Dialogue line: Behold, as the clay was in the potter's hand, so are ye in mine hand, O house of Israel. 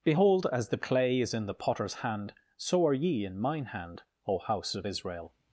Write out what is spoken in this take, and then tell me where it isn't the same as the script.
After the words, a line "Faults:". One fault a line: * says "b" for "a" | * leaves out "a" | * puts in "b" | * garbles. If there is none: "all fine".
Behold, as the clay is in the potter's hand, so are ye in mine hand, O house of Israel.
Faults:
* says "is" for "was"